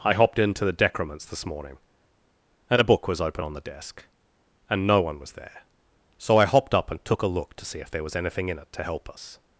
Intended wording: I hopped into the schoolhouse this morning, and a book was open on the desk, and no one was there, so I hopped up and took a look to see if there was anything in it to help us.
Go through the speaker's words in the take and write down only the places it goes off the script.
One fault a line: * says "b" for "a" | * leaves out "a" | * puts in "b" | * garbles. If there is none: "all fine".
* says "decrements" for "schoolhouse"